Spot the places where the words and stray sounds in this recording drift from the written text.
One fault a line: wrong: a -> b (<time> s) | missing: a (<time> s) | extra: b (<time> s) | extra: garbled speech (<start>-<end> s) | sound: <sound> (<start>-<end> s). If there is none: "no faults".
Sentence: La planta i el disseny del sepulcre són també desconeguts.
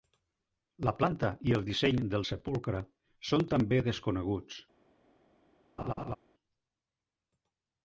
sound: laugh (5.8-6.2 s)